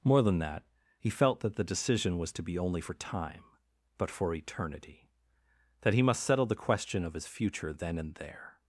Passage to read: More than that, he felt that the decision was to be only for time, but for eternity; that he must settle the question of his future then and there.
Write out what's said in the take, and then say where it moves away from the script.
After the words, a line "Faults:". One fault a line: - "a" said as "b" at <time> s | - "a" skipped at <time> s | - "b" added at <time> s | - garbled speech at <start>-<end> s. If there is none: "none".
More than that, he felt that the decision was to be only for time, but for eternity; that he must settle the question of his future then and there.
Faults:
none